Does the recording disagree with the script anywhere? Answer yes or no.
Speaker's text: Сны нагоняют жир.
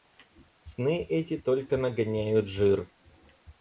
yes